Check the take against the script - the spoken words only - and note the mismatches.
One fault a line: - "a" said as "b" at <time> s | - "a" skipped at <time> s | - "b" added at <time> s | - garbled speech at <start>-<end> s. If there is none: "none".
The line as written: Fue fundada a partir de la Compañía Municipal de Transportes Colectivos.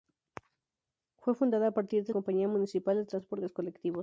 - "la" skipped at 2.1 s